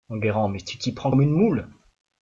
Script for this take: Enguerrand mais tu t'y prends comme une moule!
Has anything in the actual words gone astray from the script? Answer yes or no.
no